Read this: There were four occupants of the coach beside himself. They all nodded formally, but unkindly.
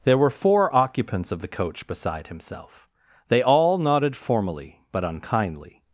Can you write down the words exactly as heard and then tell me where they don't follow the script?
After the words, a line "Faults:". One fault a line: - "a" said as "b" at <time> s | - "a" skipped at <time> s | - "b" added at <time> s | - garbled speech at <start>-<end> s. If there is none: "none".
There were four occupants of the coach beside himself. They all nodded formally, but unkindly.
Faults:
none